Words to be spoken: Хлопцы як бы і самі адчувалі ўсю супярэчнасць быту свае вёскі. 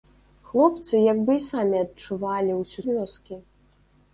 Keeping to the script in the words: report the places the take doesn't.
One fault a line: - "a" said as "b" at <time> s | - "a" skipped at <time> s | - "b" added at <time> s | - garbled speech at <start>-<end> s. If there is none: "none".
- "супярэчнасць быту свае" skipped at 2.8 s